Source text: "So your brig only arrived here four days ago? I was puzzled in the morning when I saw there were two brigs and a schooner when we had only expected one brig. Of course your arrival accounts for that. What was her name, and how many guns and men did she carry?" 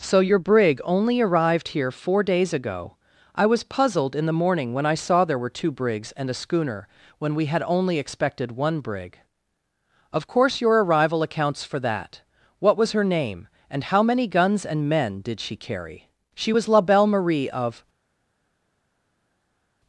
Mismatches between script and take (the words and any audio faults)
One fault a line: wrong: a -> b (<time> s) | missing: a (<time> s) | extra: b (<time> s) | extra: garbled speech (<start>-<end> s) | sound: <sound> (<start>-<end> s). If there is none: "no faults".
extra: She was La Belle Marie of (16.3 s)